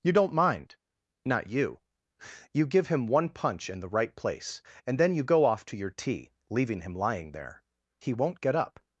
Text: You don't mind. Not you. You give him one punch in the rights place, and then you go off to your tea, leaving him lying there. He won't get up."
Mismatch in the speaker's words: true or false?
true